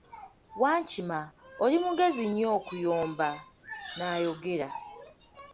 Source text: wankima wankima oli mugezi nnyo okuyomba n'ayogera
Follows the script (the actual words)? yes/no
no